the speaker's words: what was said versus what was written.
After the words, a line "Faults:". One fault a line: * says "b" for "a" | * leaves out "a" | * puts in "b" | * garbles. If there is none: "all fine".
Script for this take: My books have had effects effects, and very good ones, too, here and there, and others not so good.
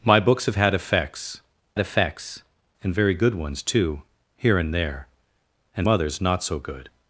My books have had effects effects, and very good ones, too, here and there, and others not so good.
Faults:
all fine